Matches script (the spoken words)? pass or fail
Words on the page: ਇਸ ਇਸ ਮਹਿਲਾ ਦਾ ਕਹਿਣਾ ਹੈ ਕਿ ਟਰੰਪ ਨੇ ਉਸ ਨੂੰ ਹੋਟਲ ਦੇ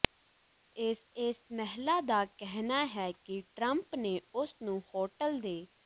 pass